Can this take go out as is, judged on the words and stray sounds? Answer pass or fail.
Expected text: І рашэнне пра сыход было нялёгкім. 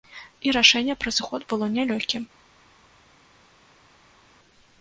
pass